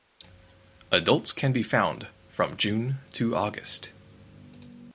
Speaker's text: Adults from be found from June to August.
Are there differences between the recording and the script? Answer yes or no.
yes